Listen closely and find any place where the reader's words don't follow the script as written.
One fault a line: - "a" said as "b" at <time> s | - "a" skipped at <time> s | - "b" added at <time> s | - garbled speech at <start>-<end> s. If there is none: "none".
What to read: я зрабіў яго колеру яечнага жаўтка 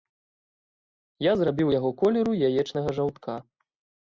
none